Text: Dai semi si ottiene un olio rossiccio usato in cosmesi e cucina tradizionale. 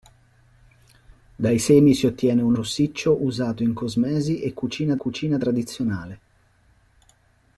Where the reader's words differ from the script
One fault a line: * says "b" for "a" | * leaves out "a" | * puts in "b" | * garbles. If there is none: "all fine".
* leaves out "olio"
* puts in "cucina"